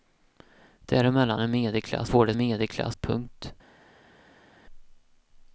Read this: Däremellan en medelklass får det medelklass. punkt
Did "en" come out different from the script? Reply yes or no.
no